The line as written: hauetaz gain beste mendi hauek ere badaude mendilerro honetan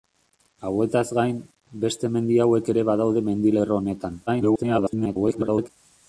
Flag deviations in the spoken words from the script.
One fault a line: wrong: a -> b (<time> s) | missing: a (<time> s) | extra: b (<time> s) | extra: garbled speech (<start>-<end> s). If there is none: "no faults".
extra: garbled speech (4.3-5.7 s)